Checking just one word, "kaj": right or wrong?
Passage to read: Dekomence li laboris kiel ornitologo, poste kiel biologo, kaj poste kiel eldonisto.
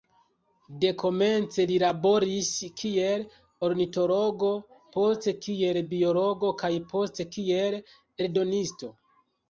right